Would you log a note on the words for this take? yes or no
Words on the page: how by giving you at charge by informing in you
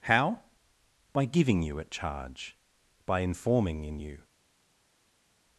no